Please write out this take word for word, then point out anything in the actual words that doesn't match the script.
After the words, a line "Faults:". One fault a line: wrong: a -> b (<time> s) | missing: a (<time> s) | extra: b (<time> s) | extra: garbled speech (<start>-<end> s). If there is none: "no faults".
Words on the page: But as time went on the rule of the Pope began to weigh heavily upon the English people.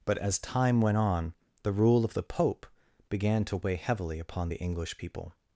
But as time went on the rule of the Pope began to weigh heavily upon the English people.
Faults:
no faults